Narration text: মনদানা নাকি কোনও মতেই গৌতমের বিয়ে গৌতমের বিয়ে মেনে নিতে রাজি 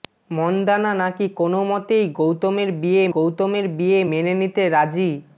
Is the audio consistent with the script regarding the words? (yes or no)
yes